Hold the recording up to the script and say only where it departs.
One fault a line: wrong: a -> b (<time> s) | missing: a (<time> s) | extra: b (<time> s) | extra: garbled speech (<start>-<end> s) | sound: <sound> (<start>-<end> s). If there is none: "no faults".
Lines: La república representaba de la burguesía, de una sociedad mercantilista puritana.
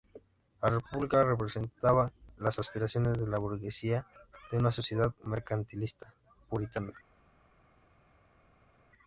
extra: las aspiraciones (2.4 s)